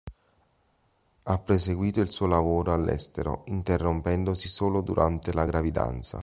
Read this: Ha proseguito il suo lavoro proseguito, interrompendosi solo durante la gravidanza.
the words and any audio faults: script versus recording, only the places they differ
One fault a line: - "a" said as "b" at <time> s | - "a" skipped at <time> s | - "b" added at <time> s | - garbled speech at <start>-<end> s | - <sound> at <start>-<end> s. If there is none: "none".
- "proseguito" said as "all'estero" at 2.7 s